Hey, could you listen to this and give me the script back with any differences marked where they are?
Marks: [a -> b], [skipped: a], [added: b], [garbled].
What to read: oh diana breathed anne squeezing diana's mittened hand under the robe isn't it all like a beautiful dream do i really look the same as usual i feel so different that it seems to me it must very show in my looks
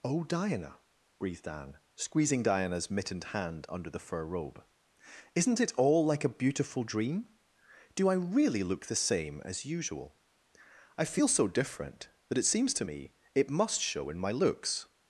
oh diana breathed anne squeezing diana's mittened hand under the [added: fur] robe isn't it all like a beautiful dream do i really look the same as usual i feel so different that it seems to me it must [skipped: very] show in my looks